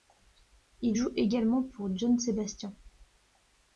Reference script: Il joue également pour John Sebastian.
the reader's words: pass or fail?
pass